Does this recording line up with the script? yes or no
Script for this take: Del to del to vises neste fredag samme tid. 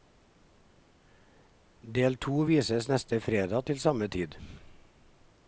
no